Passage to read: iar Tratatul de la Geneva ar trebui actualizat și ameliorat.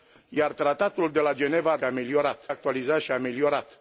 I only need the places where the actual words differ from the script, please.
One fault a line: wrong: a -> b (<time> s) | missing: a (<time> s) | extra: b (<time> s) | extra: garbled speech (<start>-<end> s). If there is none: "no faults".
wrong: trebui -> ameliorat (1.8 s)